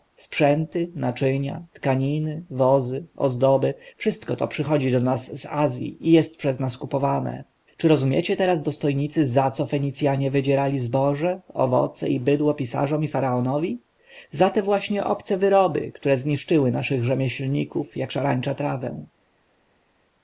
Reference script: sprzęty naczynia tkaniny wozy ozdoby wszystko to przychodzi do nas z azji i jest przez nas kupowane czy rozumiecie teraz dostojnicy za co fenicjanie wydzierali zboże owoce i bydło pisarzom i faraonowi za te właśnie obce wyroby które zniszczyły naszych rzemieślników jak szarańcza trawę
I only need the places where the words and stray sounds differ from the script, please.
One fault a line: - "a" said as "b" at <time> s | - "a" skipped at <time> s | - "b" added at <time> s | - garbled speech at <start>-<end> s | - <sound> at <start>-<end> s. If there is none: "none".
none